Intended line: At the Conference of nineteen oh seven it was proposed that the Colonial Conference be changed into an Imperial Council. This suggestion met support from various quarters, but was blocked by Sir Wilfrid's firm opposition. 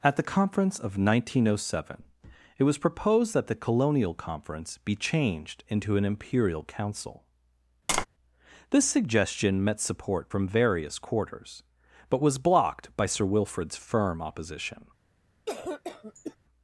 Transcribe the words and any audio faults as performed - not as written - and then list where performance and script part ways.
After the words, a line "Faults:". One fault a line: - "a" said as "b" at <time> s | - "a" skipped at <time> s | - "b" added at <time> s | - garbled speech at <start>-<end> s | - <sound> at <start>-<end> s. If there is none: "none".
At the Conference of nineteen oh seven it was proposed that the Colonial Conference be changed into an Imperial Council. This suggestion met support from various quarters, but was blocked by Sir Wilfrid's firm opposition.
Faults:
- tap at 7.9-8.1 s
- cough at 15.5-16.4 s